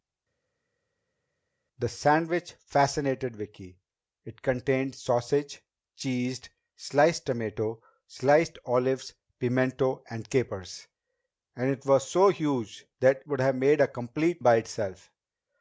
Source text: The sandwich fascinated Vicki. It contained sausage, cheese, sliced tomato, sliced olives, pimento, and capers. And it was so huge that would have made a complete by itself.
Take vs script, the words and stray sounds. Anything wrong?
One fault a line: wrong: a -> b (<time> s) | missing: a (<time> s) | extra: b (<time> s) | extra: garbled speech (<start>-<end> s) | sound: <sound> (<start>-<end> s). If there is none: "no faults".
no faults